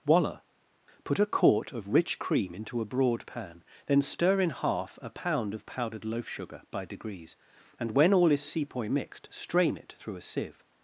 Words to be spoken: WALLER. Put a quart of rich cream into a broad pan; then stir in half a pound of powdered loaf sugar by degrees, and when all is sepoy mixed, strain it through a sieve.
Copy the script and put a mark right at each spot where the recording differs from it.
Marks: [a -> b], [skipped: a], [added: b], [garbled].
WALLER. Put a quart of rich cream into a broad pan; then stir in half a pound of powdered loaf sugar by degrees, and when all is sepoy mixed, strain it through a sieve.